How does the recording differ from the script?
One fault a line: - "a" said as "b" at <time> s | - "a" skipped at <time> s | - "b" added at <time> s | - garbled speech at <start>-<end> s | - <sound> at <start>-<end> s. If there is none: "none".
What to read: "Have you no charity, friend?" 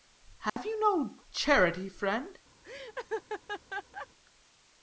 - dropout at 0.5-0.6 s
- laugh at 2.6-4.1 s